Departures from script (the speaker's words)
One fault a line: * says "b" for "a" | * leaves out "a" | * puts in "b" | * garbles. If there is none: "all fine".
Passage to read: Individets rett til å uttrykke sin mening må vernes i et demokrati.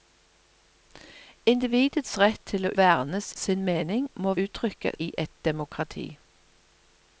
* says "vernes" for "uttrykke"
* says "uttrykke" for "vernes"